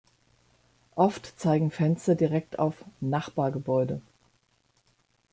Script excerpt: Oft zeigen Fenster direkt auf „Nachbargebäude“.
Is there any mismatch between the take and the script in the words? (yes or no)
no